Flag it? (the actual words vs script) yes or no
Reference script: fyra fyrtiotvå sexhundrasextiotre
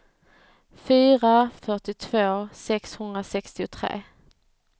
no